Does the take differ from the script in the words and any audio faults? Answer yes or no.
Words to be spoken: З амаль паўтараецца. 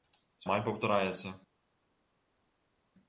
no